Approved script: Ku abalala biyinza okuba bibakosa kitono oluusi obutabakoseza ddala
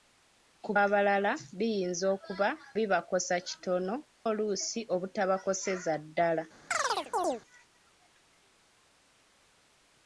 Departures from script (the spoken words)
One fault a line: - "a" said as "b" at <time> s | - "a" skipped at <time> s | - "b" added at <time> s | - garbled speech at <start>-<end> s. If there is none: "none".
none